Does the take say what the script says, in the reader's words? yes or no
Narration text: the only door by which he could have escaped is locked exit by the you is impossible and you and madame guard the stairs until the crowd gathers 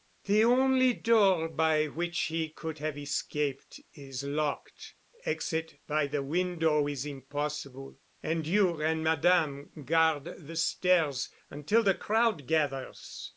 no